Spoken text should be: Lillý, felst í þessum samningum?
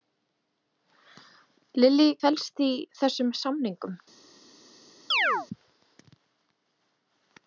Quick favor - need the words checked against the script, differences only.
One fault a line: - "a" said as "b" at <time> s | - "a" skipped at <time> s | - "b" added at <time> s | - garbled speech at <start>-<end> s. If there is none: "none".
none